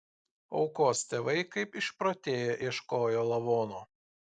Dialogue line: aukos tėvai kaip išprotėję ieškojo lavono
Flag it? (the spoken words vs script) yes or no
no